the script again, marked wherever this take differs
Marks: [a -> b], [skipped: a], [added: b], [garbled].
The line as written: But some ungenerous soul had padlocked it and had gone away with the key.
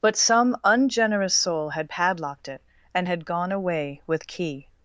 But some ungenerous soul had padlocked it and had gone away with [skipped: the] key.